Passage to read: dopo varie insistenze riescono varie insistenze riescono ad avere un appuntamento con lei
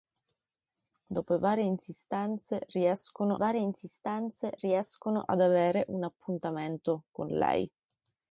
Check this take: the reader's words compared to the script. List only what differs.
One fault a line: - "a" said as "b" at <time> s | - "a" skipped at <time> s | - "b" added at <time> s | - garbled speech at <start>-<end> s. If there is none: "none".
none